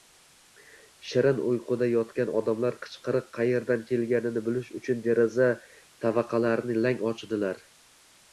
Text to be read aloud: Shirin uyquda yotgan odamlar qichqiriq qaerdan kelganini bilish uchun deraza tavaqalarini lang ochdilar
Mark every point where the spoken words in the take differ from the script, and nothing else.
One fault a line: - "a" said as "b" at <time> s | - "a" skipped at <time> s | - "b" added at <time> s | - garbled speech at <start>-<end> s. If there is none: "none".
none